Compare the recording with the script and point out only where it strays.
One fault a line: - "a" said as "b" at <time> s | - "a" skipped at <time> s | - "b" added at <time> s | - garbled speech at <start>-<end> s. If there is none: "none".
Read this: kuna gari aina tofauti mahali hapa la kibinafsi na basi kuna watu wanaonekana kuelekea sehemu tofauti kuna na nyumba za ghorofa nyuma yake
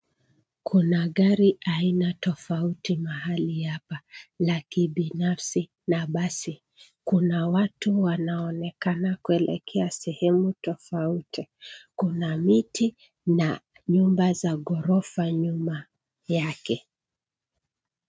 - "miti" added at 12.4 s